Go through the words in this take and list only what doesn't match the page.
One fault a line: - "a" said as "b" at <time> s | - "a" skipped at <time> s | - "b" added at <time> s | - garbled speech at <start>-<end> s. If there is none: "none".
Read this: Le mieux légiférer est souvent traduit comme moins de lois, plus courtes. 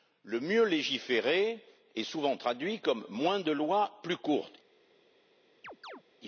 none